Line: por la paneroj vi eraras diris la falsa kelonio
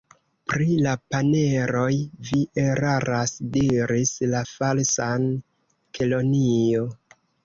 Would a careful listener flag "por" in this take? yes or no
yes